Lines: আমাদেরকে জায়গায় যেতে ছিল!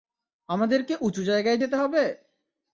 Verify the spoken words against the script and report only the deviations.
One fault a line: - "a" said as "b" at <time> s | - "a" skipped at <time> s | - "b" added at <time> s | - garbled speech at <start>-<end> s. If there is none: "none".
- "উঁচু" added at 1.0 s
- "ছিল" said as "হবে" at 1.7 s